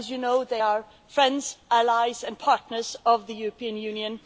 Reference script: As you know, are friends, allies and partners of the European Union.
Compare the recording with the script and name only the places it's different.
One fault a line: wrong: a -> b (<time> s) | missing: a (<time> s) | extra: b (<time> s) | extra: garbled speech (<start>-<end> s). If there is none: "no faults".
extra: they (0.4 s)